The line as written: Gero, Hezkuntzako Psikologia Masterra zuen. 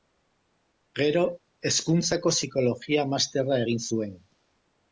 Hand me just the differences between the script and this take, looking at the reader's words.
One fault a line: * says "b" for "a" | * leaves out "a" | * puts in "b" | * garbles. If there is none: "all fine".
* puts in "egin"